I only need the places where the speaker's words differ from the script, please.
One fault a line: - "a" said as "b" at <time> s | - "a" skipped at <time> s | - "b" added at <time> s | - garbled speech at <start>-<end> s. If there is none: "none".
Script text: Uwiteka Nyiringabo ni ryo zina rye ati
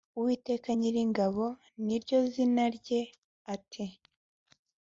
none